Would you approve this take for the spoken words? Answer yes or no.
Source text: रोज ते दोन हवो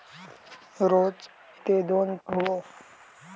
yes